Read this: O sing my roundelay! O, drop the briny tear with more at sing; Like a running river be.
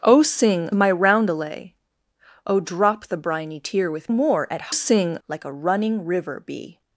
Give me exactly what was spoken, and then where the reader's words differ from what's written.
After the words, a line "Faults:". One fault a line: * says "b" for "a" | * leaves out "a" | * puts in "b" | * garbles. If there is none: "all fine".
O sing my roundelay! O, drop the briny tear with more at sing; Like a running river be.
Faults:
all fine